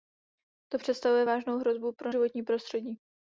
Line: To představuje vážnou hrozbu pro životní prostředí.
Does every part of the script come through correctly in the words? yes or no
yes